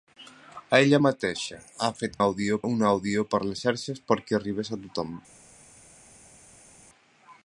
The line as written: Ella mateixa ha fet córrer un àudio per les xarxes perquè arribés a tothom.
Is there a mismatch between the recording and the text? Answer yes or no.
yes